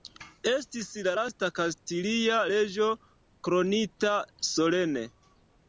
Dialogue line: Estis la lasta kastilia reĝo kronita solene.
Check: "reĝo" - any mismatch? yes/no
no